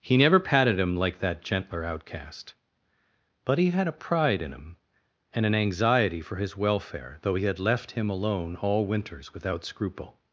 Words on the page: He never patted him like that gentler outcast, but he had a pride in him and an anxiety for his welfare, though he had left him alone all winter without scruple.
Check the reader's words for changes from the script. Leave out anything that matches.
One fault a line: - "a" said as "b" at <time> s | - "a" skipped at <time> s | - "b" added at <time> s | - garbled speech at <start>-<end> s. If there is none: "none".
- "winter" said as "winters" at 8.9 s